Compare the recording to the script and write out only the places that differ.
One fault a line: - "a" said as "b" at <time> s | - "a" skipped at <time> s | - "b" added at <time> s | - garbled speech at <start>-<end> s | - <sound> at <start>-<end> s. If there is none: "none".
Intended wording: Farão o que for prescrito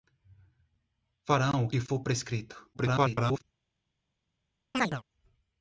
- garbled speech at 2.7-3.4 s
- chirp at 4.7-5.0 s